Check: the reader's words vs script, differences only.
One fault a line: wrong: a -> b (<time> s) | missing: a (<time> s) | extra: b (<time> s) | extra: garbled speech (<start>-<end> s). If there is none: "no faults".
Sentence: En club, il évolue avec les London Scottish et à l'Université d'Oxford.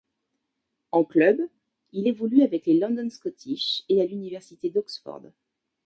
no faults